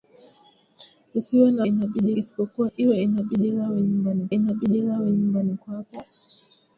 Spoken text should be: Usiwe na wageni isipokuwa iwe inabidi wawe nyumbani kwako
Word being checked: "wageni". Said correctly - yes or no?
no